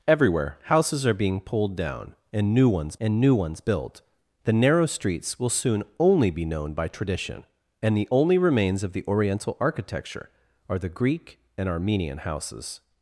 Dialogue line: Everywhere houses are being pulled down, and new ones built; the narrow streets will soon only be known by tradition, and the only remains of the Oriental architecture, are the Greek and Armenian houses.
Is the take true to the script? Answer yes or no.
no